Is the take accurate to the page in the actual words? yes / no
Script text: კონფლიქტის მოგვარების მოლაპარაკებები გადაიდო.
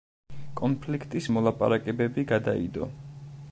no